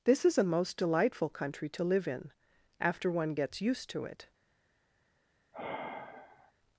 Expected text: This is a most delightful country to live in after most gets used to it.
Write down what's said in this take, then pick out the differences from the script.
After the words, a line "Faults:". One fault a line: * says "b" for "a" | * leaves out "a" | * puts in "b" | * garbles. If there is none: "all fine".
This is a most delightful country to live in after one gets used to it.
Faults:
* says "one" for "most"